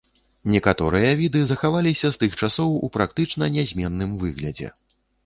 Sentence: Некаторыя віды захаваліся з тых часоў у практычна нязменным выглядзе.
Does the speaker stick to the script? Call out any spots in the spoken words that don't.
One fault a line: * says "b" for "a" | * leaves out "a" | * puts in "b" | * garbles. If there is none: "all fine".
all fine